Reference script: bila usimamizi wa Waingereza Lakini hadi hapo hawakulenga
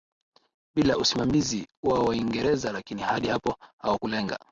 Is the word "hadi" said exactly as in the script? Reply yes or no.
yes